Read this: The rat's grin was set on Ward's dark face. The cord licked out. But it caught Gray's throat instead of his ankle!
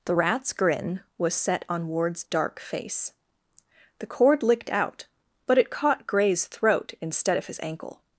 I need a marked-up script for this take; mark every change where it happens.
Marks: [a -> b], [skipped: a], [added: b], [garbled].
The rat's grin was set on Ward's dark face. The cord licked out. But it caught Gray's throat instead of his ankle!